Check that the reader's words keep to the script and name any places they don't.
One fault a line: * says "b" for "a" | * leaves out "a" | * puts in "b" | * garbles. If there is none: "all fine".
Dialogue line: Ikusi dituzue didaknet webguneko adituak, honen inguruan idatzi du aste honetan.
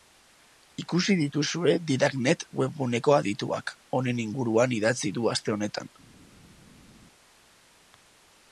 all fine